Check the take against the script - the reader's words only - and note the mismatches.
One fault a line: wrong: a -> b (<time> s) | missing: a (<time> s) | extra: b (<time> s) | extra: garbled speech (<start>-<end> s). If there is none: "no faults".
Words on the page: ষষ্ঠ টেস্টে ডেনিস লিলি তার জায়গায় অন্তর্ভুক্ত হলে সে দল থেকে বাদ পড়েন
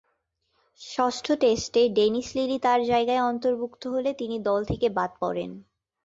wrong: সে -> তিনি (4.2 s)